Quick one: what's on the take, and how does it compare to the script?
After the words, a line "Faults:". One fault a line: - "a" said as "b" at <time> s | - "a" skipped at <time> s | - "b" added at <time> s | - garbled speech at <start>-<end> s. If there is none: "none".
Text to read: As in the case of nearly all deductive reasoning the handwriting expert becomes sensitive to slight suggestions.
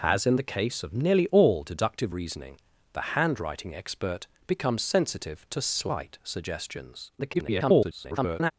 As in the case of nearly all deductive reasoning the handwriting expert becomes sensitive to slight suggestions. [garbled]
Faults:
- garbled speech at 7.2-8.5 s